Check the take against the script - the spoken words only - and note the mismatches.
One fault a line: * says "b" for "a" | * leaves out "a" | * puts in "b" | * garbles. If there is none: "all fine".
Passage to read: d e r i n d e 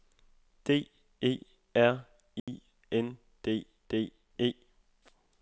* puts in "d"